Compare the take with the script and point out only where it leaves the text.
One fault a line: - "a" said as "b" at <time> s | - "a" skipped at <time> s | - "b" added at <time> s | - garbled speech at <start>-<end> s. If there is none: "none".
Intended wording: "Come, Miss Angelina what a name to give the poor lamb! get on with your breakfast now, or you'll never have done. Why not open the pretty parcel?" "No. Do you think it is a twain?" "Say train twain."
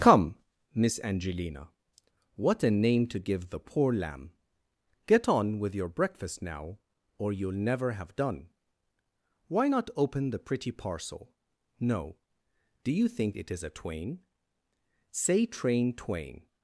none